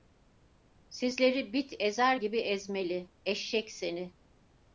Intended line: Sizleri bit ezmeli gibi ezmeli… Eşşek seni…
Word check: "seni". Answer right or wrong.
right